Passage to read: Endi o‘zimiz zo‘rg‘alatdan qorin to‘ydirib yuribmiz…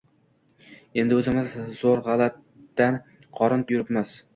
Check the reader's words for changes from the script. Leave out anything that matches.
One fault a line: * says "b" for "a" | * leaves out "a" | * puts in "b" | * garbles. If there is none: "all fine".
* leaves out "to‘ydirib"